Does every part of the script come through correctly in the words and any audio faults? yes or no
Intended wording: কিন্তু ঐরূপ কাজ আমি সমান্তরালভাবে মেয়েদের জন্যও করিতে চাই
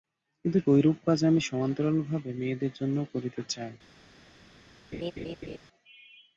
no